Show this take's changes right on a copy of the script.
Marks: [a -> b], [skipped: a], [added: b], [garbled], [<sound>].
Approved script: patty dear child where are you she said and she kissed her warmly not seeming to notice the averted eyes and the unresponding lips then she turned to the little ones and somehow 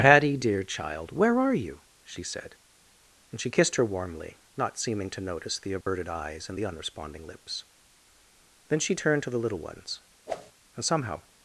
patty dear child where are you she said and she kissed her warmly not seeming to notice the averted [dropout] eyes and the unresponding lips then she turned to the little ones [whoosh] and somehow